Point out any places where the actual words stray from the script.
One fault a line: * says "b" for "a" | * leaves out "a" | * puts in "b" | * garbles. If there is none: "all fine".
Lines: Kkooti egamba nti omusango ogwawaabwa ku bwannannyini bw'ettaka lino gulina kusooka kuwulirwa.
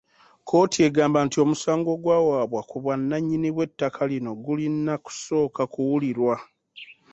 all fine